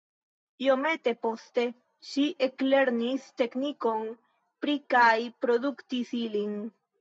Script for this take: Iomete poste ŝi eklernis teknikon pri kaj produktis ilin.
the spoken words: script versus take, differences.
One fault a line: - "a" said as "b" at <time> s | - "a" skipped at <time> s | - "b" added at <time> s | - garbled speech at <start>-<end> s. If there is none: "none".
none